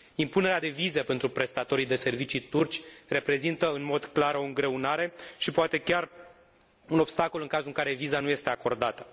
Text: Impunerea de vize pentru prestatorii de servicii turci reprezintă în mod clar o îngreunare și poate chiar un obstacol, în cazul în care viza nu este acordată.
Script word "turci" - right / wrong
right